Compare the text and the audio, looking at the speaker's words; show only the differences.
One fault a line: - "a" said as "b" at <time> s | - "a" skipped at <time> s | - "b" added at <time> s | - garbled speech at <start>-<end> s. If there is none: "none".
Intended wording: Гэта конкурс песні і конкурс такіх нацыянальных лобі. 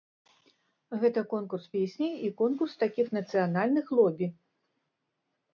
none